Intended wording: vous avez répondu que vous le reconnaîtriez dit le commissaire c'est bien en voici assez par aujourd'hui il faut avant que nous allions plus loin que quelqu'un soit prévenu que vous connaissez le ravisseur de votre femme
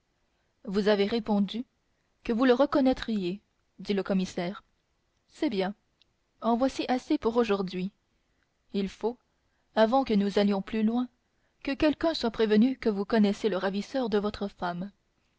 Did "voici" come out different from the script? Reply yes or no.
no